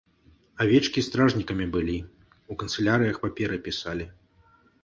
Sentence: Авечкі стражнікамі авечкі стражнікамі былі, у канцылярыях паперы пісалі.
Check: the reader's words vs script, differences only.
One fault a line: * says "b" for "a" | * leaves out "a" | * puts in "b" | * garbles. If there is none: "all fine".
* leaves out "авечкі стражнікамі"